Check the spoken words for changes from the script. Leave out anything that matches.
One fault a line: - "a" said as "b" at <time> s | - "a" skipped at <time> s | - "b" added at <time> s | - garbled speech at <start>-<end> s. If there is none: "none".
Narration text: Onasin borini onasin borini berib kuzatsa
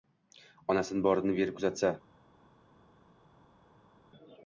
- "onasin borini" skipped at 1.4 s